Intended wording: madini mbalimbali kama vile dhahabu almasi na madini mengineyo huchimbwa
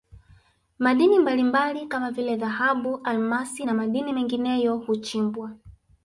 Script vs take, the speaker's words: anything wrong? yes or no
no